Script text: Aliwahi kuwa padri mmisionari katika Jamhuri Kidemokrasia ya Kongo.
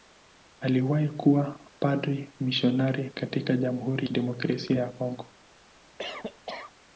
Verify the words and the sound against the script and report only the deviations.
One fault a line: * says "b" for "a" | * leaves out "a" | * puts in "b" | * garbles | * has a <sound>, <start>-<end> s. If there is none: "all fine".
* has a cough, 6.0-6.7 s